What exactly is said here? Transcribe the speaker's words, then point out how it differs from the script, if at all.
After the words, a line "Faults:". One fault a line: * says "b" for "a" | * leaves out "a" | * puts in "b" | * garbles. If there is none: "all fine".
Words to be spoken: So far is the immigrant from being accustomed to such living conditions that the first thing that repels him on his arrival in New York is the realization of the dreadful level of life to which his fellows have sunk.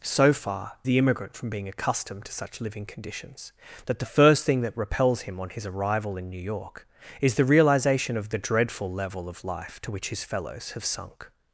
So far the immigrant from being accustomed to such living conditions that the first thing that repels him on his arrival in New York is the realization of the dreadful level of life to which his fellows have sunk.
Faults:
* leaves out "is"